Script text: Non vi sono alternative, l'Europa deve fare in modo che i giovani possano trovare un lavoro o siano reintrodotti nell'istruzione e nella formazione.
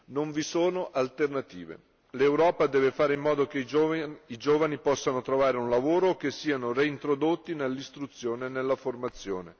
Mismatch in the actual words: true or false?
true